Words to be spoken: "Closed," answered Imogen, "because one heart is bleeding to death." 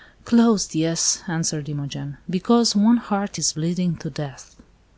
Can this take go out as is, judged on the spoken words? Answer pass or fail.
fail